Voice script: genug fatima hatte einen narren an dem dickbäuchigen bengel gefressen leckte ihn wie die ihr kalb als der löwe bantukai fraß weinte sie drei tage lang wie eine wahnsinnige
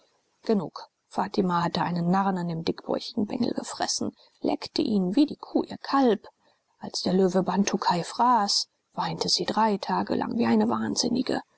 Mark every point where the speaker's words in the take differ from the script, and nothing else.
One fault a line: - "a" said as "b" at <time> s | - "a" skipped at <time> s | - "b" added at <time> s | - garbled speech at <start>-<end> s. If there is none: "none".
- "kuh" added at 5.4 s